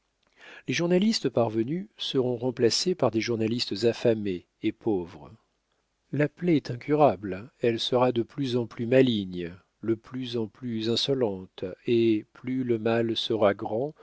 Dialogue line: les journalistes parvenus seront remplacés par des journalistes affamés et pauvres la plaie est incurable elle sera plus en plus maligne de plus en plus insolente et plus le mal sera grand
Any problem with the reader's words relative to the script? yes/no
yes